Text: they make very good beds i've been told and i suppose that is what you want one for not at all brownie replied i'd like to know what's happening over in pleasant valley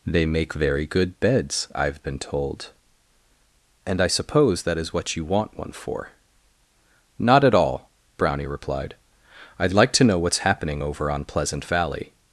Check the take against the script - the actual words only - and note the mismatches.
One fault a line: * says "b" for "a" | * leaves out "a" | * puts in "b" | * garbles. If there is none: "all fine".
* says "on" for "in"